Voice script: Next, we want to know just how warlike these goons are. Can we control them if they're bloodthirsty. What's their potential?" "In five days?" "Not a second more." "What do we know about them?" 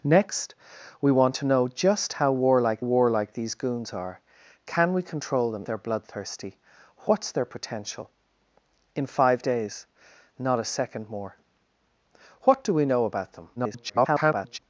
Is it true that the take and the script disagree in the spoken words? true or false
true